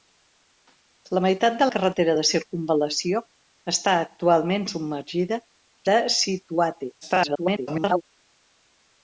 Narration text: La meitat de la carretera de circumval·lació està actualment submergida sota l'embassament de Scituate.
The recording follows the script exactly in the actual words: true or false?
false